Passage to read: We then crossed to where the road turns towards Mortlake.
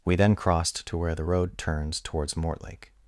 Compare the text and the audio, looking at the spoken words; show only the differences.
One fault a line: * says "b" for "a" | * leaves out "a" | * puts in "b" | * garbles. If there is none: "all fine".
all fine